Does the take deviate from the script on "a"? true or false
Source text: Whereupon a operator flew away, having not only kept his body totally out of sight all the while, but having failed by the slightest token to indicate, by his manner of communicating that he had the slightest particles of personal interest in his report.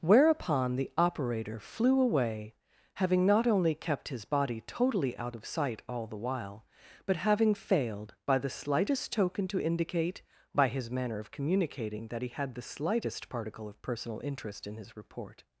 true